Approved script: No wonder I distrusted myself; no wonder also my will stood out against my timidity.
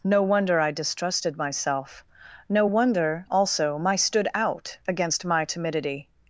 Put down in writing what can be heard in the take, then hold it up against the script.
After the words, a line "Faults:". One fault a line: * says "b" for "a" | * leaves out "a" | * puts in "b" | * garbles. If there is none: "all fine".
No wonder I distrusted myself; no wonder also my stood out against my timidity.
Faults:
* leaves out "will"